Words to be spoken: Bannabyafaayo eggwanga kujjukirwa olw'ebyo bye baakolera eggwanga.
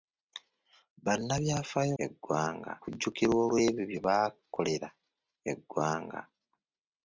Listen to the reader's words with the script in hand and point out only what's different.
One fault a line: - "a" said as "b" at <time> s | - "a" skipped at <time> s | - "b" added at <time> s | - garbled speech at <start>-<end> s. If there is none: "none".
none